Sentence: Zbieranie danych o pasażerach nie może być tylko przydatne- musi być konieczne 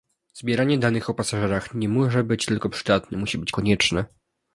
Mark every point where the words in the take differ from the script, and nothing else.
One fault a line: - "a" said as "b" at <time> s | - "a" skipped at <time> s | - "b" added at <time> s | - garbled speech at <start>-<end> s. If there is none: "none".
none